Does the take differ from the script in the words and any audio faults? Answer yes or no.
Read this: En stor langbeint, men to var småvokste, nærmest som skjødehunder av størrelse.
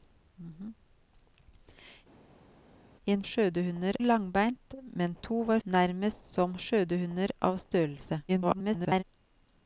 yes